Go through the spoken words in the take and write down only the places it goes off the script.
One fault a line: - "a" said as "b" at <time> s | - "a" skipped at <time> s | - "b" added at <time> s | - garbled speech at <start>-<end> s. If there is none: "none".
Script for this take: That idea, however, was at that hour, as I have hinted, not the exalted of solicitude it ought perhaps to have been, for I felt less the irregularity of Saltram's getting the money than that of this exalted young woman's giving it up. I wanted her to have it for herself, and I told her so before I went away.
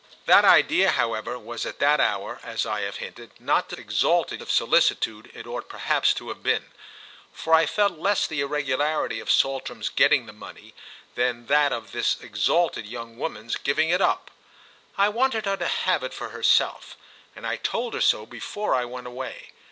none